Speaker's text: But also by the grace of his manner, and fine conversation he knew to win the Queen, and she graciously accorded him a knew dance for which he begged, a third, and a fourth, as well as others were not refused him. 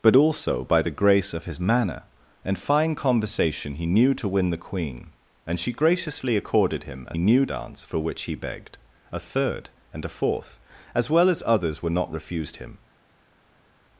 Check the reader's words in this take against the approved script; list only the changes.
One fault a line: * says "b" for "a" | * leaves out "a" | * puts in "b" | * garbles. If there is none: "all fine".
all fine